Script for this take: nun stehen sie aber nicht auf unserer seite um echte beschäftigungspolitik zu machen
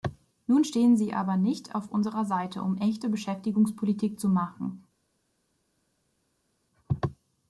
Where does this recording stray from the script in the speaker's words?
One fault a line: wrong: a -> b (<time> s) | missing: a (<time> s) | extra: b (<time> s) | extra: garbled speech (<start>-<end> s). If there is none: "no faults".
no faults